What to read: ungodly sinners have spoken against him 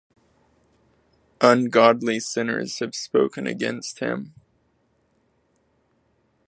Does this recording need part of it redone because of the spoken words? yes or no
no